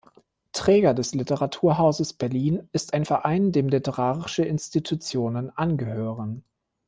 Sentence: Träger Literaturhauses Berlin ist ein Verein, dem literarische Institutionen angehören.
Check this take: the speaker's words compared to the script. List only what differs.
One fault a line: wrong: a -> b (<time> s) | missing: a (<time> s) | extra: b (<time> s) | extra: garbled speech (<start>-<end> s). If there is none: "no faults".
extra: des (0.9 s)